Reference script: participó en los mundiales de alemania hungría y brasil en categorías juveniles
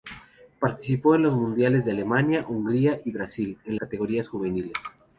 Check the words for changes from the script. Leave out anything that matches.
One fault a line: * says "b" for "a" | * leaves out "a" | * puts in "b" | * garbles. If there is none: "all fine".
all fine